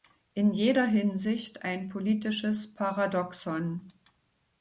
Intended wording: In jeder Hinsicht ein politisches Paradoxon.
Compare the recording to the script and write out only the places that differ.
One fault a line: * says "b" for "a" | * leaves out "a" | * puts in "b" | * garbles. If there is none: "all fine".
all fine